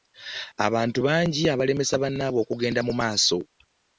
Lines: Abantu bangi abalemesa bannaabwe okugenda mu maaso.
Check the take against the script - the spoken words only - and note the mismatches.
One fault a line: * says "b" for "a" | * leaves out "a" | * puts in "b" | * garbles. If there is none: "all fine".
all fine